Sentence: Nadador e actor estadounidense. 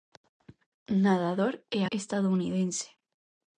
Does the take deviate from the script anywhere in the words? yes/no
yes